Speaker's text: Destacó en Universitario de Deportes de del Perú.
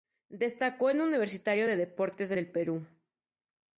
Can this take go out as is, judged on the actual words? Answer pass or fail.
pass